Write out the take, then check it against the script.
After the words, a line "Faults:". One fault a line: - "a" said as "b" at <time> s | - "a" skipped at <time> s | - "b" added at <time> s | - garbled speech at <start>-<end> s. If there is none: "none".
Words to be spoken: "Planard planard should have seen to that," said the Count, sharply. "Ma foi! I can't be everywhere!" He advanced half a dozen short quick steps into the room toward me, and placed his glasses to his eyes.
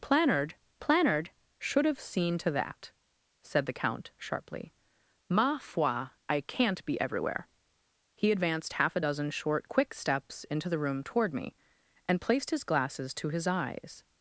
"Planard planard should have seen to that," said the Count, sharply. "Ma foi! I can't be everywhere!" He advanced half a dozen short quick steps into the room toward me, and placed his glasses to his eyes.
Faults:
none